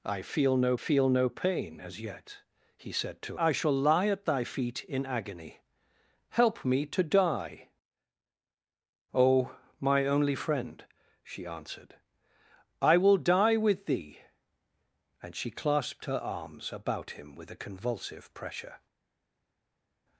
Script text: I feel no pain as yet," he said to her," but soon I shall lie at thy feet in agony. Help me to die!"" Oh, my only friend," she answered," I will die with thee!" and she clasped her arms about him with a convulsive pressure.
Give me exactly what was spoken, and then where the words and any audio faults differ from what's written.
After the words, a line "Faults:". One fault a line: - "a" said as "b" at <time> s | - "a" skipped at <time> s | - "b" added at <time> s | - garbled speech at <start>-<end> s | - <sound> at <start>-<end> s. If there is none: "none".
I feel no feel no pain as yet," he said to I shall lie at thy feet in agony. Help me to die!"" Oh, my only friend," she answered," I will die with thee!" and she clasped her arms about him with a convulsive pressure.
Faults:
- "feel no" added at 0.8 s
- "her but soon" skipped at 3.4 s